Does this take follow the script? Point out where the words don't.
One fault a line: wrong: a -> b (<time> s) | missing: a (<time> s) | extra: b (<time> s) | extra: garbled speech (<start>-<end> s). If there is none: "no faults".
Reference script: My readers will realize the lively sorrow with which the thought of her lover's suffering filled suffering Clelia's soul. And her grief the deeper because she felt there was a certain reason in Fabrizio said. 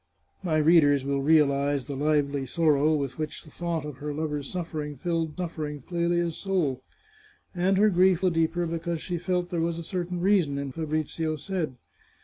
no faults